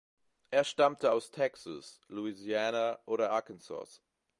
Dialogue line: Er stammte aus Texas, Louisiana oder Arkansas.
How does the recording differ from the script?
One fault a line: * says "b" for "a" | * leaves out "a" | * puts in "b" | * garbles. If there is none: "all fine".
all fine